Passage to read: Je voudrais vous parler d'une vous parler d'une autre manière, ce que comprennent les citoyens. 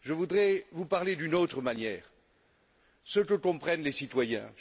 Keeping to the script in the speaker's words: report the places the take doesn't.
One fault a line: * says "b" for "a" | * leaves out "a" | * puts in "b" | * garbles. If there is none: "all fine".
* leaves out "vous parler d'une"